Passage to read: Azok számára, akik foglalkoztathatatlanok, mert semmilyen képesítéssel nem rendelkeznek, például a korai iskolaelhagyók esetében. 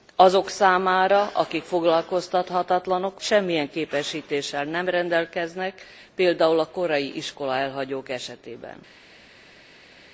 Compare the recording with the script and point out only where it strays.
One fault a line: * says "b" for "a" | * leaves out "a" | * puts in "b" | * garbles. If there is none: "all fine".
* leaves out "mert"